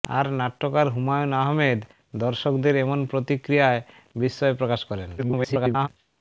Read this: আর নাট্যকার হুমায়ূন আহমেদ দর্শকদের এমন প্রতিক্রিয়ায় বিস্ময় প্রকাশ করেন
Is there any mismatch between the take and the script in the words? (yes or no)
yes